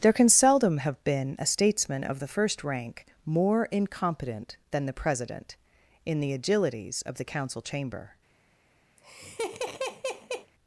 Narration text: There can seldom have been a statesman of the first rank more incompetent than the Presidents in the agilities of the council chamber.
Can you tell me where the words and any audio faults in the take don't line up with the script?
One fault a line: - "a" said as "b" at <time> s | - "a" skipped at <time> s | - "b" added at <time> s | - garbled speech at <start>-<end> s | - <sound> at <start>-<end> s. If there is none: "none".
- "Presidents" said as "President" at 4.9 s
- laugh at 9.0-10.5 s